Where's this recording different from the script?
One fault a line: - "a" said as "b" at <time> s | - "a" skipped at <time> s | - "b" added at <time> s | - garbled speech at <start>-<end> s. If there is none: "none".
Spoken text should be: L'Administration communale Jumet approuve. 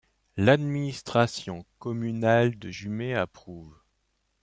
- "de" added at 2.6 s